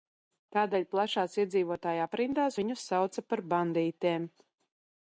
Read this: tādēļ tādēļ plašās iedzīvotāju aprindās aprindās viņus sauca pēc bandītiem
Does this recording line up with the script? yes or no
no